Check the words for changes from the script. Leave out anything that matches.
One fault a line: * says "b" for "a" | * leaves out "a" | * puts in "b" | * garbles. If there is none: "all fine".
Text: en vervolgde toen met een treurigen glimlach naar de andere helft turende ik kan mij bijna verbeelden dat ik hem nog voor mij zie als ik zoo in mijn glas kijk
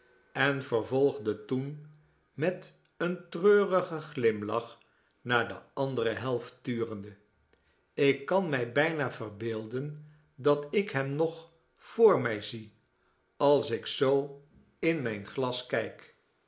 all fine